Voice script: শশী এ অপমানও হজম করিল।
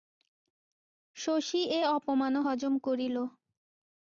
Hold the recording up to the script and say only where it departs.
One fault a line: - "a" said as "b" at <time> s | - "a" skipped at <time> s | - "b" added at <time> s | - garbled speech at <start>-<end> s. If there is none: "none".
none